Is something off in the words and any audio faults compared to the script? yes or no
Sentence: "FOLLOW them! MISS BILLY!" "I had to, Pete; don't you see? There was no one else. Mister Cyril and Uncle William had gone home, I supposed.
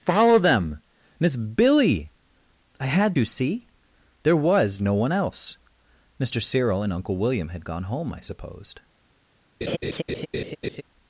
yes